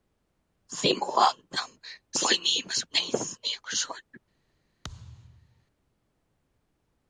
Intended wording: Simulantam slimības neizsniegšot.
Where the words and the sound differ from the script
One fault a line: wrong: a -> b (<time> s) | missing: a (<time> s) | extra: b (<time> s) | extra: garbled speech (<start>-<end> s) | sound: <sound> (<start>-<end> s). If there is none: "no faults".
sound: thud (4.8-5.7 s)